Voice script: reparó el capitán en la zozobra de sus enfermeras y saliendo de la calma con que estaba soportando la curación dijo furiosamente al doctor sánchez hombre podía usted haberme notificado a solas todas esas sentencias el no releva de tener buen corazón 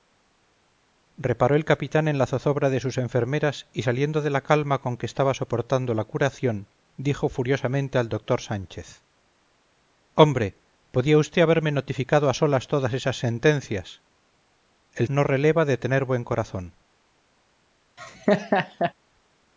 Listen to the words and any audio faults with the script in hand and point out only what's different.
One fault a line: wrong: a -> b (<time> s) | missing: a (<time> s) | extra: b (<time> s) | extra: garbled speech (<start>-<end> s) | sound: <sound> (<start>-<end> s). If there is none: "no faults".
sound: laugh (18.0-18.9 s)